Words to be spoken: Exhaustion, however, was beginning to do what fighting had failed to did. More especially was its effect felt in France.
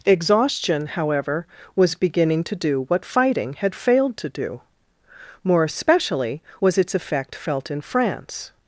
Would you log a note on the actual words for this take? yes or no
yes